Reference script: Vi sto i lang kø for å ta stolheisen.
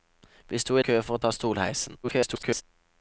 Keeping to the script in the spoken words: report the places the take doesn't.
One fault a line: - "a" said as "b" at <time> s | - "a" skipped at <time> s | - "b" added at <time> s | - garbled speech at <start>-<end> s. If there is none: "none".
- "lang" skipped at 0.8 s
- garbled speech at 2.0-2.6 s